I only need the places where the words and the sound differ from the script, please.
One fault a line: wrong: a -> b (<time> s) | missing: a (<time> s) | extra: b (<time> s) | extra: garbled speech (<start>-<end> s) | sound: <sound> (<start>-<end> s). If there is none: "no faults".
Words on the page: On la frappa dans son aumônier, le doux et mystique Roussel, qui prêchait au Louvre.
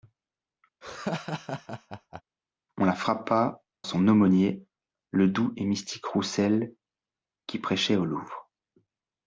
sound: laugh (0.8-2.2 s)
missing: dans (3.6 s)